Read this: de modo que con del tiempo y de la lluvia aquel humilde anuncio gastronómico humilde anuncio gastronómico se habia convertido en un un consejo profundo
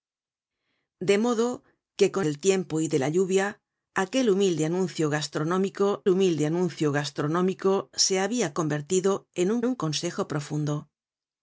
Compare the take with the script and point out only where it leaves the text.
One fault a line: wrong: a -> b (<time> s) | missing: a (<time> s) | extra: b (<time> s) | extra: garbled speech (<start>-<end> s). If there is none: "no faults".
no faults